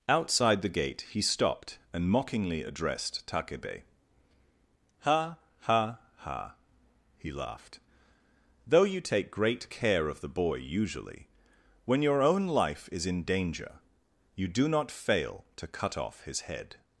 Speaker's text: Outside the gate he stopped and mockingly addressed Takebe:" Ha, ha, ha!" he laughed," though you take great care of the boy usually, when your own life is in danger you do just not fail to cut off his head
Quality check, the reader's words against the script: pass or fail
fail